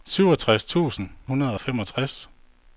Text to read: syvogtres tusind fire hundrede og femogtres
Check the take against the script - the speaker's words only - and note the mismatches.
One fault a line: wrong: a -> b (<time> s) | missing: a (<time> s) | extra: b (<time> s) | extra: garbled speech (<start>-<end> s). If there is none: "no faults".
missing: fire (1.1 s)